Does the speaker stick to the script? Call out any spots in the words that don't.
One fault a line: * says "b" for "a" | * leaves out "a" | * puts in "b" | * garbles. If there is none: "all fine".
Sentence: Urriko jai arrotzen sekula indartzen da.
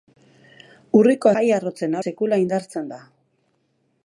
all fine